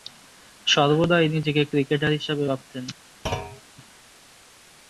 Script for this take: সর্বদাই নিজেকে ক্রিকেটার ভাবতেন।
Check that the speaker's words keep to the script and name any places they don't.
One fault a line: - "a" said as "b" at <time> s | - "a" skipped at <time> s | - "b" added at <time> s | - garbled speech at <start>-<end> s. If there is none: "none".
- "হিসেবে" added at 2.1 s